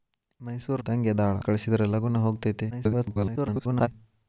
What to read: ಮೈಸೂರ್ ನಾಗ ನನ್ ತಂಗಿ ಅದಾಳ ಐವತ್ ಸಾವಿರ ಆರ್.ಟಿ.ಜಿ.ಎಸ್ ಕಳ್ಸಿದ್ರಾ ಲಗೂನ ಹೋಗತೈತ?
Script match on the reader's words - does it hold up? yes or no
no